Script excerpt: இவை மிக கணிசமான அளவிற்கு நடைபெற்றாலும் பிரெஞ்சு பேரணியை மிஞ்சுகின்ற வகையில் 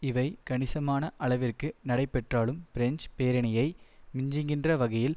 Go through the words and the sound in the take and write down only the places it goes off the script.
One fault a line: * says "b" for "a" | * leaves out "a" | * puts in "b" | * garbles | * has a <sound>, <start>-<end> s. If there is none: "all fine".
* leaves out "மிக"